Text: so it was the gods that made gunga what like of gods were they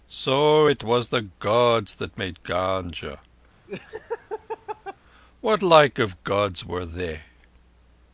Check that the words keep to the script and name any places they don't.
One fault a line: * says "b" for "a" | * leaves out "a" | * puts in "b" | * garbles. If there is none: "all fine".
all fine